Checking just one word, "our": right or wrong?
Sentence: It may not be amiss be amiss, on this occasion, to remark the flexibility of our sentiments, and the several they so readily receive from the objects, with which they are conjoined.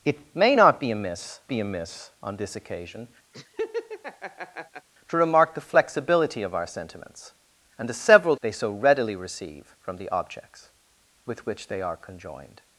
right